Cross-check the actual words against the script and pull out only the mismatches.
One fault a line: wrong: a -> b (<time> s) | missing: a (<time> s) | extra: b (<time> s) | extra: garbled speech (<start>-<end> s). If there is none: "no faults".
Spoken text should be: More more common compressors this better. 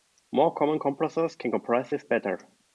missing: more (0.5 s)
extra: can compress (1.3 s)